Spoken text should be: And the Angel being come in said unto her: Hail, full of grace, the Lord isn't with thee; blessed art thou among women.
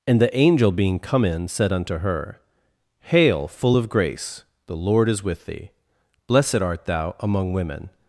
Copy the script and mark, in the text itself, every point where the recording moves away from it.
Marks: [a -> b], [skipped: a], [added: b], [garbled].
And the Angel being come in said unto her: Hail, full of grace, the Lord [isn't -> is] with thee; blessed art thou among women.